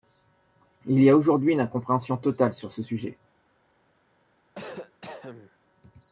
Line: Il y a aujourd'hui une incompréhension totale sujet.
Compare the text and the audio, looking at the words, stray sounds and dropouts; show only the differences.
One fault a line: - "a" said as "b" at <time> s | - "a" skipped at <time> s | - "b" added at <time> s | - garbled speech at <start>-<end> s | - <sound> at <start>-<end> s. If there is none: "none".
- "sur ce" added at 2.5 s
- cough at 4.6-5.6 s